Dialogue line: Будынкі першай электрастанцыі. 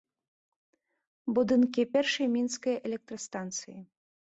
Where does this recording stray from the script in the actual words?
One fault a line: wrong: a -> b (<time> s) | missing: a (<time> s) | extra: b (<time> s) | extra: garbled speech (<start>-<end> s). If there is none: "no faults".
extra: мінскай (2.4 s)